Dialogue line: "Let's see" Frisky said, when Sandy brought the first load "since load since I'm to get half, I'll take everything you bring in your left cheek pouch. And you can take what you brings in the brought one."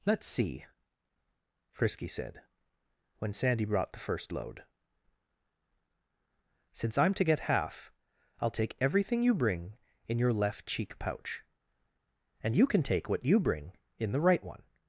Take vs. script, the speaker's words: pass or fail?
fail